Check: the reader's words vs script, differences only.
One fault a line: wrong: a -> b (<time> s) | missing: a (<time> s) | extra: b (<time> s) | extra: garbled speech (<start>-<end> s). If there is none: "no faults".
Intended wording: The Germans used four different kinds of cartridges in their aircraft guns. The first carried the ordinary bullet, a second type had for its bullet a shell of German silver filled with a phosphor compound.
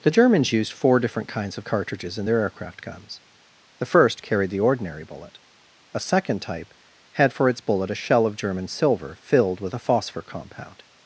no faults